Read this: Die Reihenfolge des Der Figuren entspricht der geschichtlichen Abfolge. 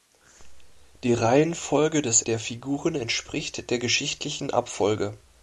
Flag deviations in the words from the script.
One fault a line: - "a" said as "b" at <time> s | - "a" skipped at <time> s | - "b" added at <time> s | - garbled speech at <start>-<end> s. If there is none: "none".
none